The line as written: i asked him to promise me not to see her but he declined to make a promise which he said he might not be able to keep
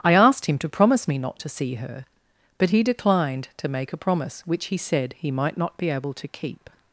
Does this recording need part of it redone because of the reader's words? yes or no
no